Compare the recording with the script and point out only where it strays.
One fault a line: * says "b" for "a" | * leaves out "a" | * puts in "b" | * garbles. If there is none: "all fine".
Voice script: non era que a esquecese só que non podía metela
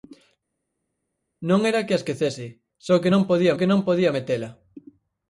* puts in "que non podía"